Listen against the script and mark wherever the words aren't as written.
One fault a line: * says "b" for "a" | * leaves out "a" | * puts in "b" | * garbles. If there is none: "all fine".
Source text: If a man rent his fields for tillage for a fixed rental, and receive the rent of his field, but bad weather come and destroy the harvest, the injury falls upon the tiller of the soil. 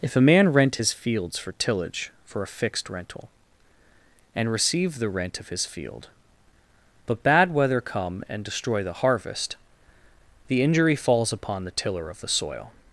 all fine